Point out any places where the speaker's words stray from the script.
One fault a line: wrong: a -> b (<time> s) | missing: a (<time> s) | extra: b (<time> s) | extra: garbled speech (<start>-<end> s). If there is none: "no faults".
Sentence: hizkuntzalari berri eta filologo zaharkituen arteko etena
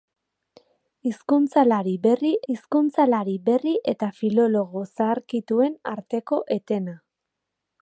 extra: hizkuntzalari berri (2.5 s)